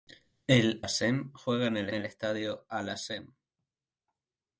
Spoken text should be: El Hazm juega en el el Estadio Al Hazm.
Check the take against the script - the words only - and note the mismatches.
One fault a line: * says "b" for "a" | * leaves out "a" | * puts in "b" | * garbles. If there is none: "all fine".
all fine